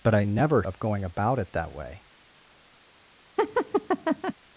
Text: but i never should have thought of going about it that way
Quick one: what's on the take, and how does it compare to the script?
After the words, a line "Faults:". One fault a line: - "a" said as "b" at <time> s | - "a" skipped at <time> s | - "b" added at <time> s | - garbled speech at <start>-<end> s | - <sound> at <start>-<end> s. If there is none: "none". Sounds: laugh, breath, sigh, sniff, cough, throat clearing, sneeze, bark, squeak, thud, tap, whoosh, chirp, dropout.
but i never of going about it that way
Faults:
- "should have thought" skipped at 0.6 s
- laugh at 3.4-4.3 s